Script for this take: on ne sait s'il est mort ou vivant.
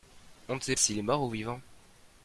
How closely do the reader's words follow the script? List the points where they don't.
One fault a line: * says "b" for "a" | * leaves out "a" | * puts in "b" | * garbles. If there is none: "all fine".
all fine